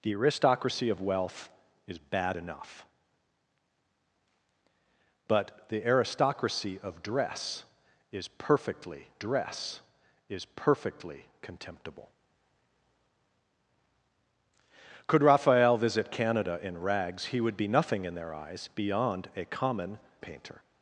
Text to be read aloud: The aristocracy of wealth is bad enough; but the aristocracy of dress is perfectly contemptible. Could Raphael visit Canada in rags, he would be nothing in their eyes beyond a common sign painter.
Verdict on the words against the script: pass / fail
fail